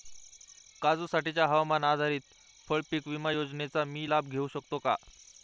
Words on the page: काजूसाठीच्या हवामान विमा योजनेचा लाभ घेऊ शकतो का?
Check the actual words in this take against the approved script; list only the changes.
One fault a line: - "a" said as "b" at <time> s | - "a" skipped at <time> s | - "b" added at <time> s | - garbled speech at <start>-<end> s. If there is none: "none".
- "आधारित फळपीक" added at 1.8 s
- "मी" added at 3.9 s